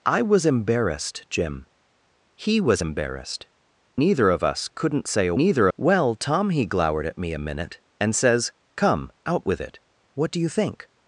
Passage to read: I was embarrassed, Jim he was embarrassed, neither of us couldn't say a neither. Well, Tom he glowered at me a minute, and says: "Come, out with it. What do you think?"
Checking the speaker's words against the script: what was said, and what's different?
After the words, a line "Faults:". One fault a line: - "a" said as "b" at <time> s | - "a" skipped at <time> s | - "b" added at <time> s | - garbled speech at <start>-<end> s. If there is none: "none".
I was embarrassed, Jim he was embarrassed, neither of us couldn't say a neither. Well, Tom he glowered at me a minute, and says: "Come, out with it. What do you think?"
Faults:
none